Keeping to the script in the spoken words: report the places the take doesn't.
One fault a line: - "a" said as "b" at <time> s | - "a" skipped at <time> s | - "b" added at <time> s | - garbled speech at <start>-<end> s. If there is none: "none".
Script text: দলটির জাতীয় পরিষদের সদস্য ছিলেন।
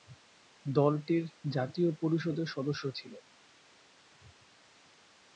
none